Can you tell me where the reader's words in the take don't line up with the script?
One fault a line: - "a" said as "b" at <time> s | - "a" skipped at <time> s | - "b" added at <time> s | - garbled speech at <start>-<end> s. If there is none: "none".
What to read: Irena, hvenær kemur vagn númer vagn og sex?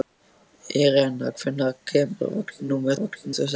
none